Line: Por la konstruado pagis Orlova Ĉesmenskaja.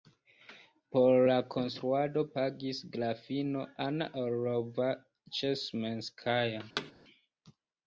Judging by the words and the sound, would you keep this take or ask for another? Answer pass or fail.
fail